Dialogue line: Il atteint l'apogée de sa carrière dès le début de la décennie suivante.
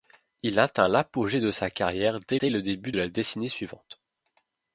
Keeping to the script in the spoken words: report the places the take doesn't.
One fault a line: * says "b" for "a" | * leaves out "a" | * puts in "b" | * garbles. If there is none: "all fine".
* puts in "dès"
* leaves out "de"